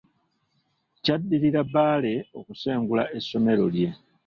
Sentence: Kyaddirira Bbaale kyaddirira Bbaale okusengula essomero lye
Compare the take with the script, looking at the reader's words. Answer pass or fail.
fail